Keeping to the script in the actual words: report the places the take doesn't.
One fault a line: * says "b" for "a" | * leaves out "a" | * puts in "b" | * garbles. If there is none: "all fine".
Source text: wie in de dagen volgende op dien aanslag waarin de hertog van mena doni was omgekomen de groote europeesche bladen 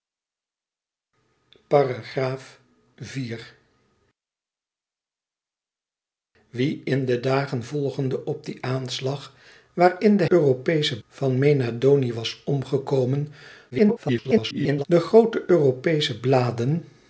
* says "europeesche" for "hertog"
* garbles